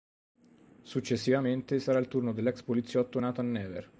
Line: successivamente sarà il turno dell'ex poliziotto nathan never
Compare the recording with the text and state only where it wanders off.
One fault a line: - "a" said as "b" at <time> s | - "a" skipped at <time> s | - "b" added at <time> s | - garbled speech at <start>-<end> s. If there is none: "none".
none